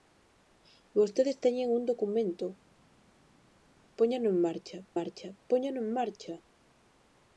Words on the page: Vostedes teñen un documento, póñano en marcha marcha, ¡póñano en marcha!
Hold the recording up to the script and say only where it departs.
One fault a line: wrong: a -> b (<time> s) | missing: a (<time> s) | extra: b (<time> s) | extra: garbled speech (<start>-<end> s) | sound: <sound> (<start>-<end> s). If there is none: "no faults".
no faults